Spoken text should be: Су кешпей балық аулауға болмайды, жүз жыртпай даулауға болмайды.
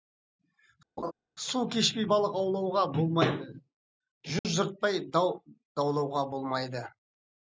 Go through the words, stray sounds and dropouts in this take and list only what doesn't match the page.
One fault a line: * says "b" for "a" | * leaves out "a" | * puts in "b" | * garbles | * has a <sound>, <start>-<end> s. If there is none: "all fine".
* has a laugh, 1.0-1.1 s
* has a dropout, 4.4-4.4 s
* puts in "дау"